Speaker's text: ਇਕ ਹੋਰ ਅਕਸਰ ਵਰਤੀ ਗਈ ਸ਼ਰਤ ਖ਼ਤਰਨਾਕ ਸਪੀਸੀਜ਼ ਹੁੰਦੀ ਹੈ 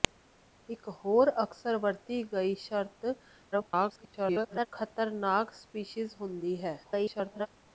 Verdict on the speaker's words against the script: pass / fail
fail